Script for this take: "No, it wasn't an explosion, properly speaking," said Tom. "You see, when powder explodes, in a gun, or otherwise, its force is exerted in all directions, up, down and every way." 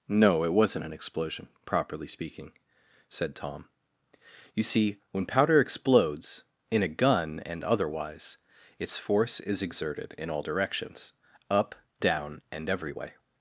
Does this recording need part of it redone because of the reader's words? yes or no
yes